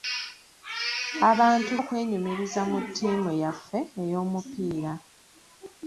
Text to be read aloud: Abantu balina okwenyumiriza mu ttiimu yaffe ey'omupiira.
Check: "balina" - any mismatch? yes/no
yes